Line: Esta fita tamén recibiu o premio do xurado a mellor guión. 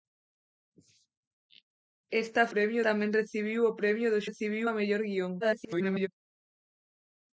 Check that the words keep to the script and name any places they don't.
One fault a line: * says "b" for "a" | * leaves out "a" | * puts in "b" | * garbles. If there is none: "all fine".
* says "premio" for "fita"
* says "recibiu" for "xurado"
* garbles